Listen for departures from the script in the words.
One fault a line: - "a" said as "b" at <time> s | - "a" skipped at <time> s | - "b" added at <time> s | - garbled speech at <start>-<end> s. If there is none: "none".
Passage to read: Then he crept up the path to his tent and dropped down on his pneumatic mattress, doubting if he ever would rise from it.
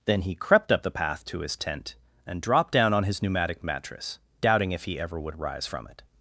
none